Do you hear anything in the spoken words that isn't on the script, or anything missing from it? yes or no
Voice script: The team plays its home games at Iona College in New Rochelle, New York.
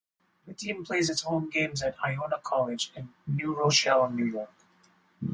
no